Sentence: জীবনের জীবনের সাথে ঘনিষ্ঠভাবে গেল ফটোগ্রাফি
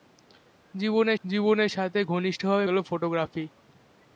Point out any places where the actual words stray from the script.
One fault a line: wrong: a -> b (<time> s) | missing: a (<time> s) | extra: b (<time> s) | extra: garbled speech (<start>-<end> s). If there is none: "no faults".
no faults